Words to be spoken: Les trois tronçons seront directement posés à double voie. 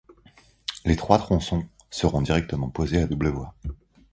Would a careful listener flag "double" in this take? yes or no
no